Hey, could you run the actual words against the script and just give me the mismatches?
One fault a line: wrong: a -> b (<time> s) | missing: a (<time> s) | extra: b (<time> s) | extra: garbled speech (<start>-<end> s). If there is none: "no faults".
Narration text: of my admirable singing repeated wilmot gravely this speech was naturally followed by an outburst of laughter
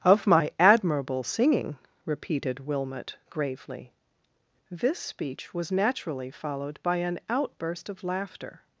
no faults